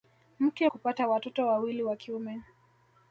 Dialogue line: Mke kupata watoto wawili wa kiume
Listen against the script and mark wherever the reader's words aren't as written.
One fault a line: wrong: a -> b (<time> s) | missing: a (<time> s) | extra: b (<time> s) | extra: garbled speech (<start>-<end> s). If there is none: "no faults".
no faults